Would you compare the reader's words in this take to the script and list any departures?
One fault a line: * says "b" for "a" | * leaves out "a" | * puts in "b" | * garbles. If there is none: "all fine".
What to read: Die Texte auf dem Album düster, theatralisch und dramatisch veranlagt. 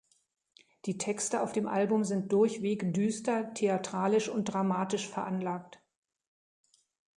* puts in "sind durchweg"